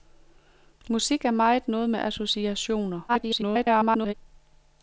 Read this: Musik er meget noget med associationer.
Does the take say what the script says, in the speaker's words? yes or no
no